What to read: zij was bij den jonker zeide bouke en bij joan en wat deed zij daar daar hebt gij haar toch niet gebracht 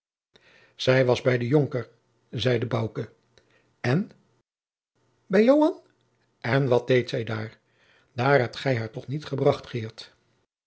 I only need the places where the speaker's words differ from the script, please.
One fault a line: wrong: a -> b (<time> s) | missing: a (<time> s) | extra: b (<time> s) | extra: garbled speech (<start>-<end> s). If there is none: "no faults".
no faults